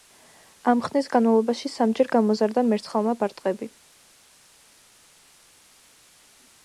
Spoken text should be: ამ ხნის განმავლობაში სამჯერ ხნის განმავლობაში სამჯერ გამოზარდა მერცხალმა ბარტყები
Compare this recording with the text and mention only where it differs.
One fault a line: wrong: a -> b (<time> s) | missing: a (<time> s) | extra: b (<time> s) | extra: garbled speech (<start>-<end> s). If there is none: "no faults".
missing: ხნის განმავლობაში სამჯერ (2.1 s)